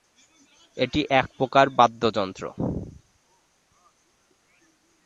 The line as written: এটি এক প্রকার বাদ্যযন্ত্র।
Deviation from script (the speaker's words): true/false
false